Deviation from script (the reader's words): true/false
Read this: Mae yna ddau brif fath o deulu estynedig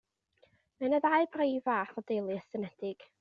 false